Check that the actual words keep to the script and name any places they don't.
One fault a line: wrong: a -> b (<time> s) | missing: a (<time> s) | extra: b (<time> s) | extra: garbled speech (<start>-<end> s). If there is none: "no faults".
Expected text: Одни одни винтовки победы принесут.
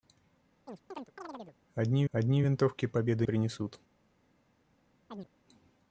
no faults